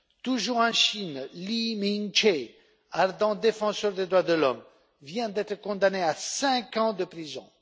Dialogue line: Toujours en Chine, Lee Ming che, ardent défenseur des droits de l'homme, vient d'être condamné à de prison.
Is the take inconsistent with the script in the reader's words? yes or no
yes